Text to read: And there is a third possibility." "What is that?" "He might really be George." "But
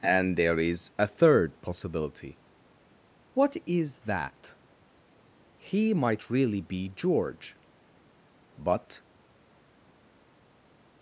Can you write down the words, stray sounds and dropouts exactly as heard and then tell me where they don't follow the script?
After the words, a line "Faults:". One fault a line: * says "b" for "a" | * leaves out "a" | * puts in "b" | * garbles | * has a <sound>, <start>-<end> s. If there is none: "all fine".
And there is a third possibility." "What is that?" "He might really be George." "But
Faults:
all fine